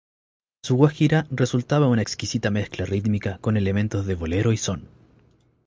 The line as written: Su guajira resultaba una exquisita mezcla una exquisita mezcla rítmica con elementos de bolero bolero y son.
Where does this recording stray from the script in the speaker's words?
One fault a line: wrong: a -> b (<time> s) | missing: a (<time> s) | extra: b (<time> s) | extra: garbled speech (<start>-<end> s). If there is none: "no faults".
missing: una exquisita mezcla (2.8 s)
missing: bolero (4.5 s)